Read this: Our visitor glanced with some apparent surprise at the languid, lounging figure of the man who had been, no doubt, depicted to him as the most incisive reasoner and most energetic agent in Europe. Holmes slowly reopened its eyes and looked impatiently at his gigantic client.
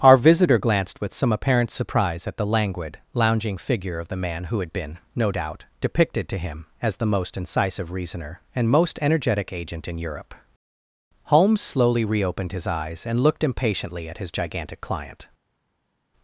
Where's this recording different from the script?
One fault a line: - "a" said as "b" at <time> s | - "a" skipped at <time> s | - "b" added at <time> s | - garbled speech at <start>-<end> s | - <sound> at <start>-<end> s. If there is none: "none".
- "its" said as "his" at 12.5 s